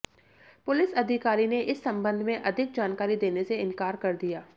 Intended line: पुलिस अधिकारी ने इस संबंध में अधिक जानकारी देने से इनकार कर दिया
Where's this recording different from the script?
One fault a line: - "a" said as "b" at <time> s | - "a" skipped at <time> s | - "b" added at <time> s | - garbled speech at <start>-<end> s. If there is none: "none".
none